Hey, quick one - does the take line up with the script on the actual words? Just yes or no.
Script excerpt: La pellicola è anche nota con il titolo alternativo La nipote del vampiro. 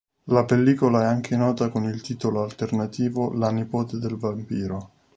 yes